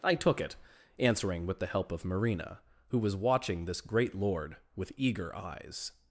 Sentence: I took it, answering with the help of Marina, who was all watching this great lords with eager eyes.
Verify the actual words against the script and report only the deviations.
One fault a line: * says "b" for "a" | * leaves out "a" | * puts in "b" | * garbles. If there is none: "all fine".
* leaves out "all"
* says "lord" for "lords"